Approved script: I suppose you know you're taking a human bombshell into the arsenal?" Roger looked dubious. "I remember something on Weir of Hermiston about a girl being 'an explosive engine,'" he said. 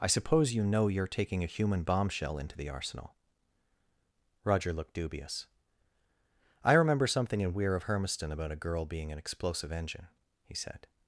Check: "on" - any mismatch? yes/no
yes